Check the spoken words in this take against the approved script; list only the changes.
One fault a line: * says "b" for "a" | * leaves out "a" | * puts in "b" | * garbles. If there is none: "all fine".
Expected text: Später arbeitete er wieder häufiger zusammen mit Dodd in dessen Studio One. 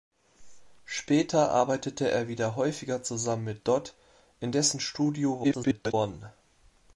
* garbles